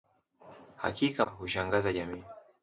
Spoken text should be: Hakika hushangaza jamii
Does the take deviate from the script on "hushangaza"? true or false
false